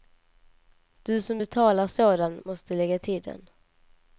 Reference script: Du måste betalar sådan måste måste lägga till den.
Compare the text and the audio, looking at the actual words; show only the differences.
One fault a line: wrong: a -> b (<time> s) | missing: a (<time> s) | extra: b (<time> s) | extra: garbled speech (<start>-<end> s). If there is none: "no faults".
wrong: måste -> som (1.2 s)
missing: måste (2.7 s)